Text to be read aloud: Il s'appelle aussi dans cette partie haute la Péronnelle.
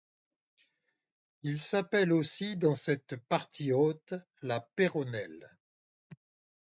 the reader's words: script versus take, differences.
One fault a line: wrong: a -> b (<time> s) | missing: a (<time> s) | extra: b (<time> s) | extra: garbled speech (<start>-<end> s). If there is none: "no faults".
no faults